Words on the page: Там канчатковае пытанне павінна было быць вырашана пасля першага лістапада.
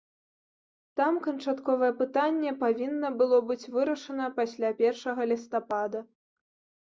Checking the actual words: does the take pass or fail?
pass